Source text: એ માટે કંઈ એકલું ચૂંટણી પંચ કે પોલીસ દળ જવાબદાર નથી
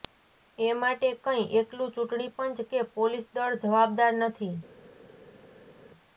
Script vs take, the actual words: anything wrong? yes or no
no